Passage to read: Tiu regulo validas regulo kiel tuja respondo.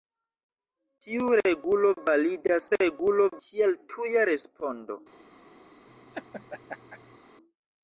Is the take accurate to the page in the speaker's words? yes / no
yes